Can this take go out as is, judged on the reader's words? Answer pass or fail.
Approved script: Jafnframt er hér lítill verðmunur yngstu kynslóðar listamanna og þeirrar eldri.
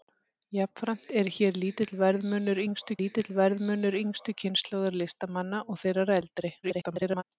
fail